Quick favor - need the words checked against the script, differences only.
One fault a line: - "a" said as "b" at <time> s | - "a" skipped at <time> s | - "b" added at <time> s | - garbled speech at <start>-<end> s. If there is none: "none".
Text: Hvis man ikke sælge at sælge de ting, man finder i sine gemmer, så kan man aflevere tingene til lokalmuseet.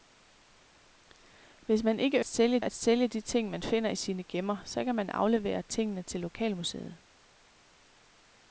none